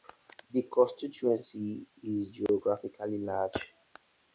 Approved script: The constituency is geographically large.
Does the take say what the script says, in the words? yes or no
yes